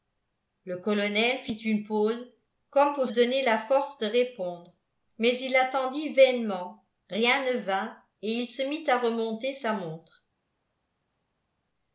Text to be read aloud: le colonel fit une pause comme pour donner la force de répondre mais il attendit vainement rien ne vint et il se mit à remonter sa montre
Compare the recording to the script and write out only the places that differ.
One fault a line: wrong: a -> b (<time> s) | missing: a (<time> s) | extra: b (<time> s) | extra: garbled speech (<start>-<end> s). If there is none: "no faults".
no faults